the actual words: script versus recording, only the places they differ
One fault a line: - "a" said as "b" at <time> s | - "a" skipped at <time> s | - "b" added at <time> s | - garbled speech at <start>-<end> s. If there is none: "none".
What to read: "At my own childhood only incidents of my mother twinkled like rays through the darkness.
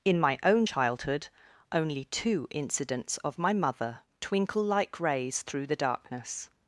- "At" said as "In" at 0.0 s
- "two" added at 2.0 s
- "twinkled" said as "twinkle" at 4.2 s